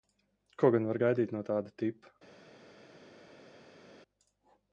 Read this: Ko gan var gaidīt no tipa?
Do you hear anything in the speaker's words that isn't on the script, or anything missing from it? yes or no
yes